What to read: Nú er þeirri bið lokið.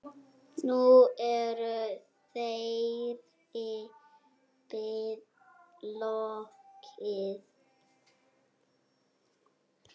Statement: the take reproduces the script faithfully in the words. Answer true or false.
true